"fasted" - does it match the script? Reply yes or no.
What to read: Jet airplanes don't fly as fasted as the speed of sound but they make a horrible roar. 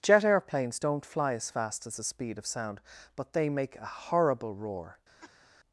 no